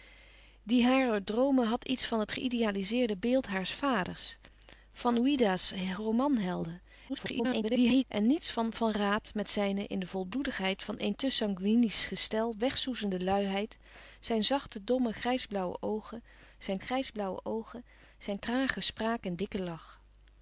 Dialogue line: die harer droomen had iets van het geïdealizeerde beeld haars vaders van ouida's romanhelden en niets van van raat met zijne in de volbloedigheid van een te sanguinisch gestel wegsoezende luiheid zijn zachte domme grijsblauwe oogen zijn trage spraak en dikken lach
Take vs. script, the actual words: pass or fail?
fail